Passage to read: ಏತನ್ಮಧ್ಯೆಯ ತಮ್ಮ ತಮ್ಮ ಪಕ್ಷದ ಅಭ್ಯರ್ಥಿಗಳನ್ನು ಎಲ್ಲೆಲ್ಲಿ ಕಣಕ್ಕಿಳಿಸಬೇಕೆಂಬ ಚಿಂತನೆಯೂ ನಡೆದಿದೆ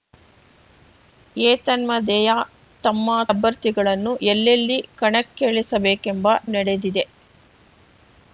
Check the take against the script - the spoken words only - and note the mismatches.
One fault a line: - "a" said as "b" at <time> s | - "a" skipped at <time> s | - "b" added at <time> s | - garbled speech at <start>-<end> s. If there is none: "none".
- "ತಮ್ಮ ಪಕ್ಷದ" skipped at 3.1 s
- "ಚಿಂತನೆಯೂ" skipped at 6.3 s